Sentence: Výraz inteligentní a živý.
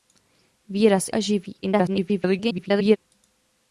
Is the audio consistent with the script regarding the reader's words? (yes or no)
no